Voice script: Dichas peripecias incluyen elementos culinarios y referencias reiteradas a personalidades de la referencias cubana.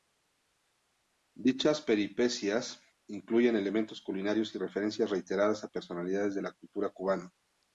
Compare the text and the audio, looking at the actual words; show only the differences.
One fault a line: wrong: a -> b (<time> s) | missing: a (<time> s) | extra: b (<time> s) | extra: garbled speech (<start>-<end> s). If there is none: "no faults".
wrong: referencias -> cultura (6.5 s)